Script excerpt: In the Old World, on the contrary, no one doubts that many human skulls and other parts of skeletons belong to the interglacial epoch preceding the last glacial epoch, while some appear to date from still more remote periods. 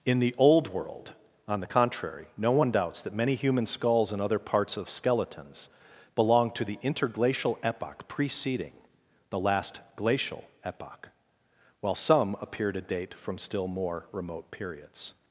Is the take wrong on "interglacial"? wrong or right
right